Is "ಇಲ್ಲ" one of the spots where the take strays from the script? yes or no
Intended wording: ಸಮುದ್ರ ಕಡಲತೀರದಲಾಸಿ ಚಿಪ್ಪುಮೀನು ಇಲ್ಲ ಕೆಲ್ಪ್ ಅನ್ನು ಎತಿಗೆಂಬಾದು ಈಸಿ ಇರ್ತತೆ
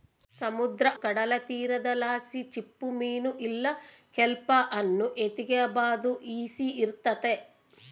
no